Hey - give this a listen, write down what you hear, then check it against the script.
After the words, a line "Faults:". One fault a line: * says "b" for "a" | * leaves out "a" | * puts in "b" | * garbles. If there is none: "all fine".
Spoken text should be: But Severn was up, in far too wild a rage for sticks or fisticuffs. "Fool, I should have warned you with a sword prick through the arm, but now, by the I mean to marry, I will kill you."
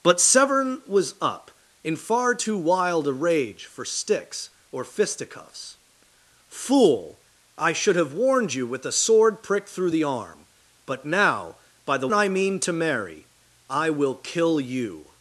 But Severn was up, in far too wild a rage for sticks or fisticuffs. "Fool, I should have warned you with a sword prick through the arm, but now, by the I mean to marry, I will kill you."
Faults:
all fine